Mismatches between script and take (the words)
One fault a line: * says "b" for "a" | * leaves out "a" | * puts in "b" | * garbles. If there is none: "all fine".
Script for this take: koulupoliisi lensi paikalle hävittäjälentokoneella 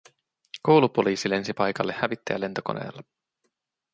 all fine